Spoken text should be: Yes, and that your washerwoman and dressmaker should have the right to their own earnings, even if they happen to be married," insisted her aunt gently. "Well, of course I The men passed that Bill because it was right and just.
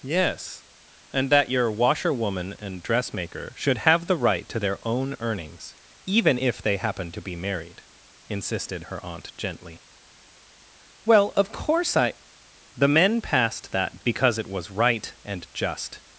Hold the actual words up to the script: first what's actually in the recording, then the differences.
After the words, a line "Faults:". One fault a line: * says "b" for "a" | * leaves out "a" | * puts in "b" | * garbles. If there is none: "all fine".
Yes, and that your washerwoman and dressmaker should have the right to their own earnings, even if they happen to be married," insisted her aunt gently. "Well, of course I The men passed that Because it was right and just.
Faults:
* leaves out "Bill"